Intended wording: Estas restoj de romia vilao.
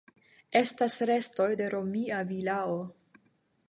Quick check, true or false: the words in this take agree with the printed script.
true